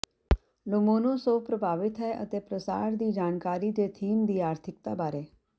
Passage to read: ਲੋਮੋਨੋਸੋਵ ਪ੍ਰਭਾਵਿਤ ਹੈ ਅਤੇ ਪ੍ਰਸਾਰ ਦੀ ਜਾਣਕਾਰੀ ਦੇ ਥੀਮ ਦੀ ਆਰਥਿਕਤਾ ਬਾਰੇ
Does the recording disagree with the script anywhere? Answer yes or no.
no